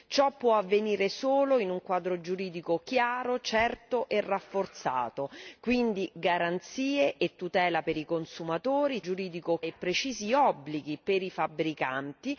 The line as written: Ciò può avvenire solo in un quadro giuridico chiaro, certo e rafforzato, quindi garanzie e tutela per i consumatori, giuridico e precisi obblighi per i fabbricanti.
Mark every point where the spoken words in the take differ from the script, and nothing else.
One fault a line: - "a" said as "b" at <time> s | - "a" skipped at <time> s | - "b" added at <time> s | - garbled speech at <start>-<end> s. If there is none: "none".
none